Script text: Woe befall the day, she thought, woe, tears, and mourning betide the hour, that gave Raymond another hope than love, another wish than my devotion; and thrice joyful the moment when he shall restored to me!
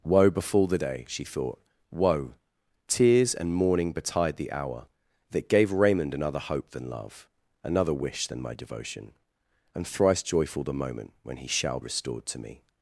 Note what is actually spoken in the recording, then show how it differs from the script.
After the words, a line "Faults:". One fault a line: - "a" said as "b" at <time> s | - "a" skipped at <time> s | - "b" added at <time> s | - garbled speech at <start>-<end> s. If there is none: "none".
Woe befall the day, she thought, woe, tears, and mourning betide the hour, that gave Raymond another hope than love, another wish than my devotion; and thrice joyful the moment when he shall restored to me!
Faults:
none